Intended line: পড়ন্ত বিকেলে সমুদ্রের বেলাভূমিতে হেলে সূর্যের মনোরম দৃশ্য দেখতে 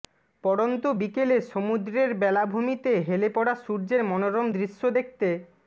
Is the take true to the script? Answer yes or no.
no